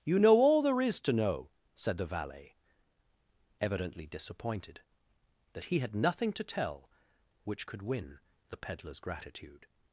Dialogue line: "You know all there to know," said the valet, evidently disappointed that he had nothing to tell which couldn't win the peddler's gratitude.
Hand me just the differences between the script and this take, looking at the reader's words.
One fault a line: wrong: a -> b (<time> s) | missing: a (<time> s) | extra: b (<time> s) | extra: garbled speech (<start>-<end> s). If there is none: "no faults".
extra: is (0.8 s)
wrong: couldn't -> could (7.6 s)